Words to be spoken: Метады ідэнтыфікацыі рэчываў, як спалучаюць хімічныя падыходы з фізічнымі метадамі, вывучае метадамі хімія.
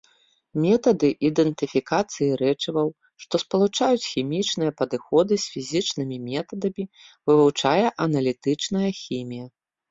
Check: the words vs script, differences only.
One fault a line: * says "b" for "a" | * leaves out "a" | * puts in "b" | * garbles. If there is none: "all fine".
* says "што" for "як"
* says "аналітычная" for "метадамі"